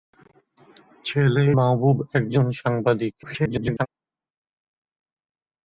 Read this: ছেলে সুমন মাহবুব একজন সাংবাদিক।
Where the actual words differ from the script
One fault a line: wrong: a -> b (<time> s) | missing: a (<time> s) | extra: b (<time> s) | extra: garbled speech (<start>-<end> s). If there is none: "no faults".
missing: সুমন (1.4 s)
extra: garbled speech (3.2-3.9 s)